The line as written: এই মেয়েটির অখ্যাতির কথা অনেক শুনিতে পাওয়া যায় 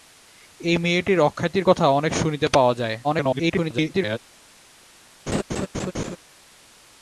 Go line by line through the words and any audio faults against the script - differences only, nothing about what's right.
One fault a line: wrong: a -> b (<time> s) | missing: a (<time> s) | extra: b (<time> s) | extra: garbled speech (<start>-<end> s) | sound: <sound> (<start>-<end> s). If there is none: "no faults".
extra: garbled speech (3.0-4.2 s)
sound: laugh (5.3-6.2 s)